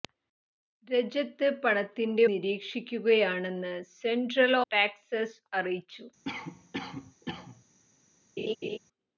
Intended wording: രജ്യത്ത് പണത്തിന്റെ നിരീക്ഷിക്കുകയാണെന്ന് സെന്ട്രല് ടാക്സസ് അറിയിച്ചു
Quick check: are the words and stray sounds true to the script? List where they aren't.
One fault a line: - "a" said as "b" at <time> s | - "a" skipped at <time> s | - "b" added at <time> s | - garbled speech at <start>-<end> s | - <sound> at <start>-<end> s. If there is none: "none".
- cough at 6.2-7.6 s
- laugh at 8.4-8.8 s